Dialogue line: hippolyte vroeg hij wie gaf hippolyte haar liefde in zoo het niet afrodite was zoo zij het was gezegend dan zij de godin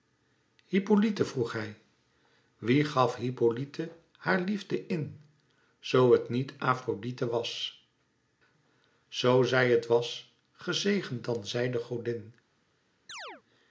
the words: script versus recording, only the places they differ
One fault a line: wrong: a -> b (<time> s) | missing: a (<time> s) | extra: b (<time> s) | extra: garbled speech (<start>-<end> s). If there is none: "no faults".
no faults